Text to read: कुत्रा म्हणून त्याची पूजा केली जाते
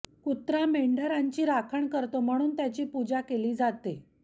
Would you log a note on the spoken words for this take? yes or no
yes